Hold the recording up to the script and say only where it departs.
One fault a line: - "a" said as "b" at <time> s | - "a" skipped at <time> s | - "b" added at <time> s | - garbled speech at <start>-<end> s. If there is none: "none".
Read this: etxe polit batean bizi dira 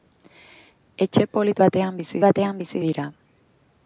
- "batean bizi" added at 2.3 s